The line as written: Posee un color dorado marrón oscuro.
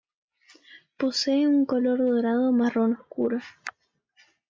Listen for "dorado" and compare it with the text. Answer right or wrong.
right